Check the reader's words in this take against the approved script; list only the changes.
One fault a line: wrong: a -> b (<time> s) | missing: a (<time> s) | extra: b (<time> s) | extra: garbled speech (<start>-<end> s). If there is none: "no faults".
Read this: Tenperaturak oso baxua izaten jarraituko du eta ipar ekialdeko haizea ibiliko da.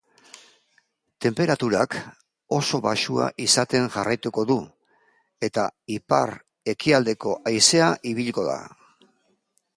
no faults